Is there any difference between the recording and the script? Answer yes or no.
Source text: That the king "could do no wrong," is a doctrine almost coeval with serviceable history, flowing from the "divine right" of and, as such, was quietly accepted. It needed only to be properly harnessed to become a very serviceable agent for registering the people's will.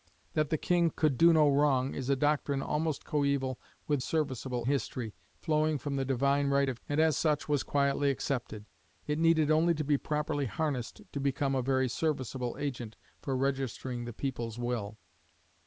no